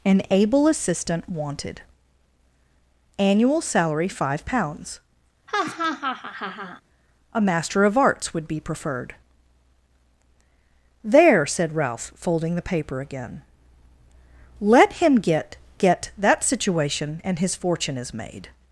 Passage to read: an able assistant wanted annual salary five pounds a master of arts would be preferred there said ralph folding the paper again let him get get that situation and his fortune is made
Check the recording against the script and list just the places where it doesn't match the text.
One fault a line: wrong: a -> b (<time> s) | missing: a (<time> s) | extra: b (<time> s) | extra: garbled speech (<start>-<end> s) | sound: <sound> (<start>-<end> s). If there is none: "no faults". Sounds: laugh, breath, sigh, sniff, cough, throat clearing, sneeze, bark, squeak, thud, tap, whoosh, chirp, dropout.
sound: laugh (5.5-6.8 s)